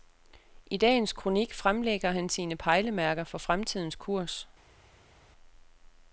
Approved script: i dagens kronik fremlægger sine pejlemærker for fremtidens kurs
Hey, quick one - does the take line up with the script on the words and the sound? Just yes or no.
no